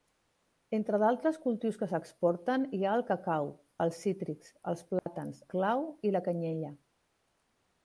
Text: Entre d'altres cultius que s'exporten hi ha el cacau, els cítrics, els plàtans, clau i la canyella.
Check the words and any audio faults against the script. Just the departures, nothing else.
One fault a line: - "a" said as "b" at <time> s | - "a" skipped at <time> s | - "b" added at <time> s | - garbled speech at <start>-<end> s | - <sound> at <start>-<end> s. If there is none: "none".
- dropout at 5.0-5.1 s